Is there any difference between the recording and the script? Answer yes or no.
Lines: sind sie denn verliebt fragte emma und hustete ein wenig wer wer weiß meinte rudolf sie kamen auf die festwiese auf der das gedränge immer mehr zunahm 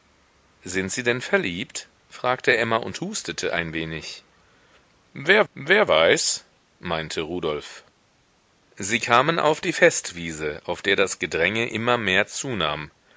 no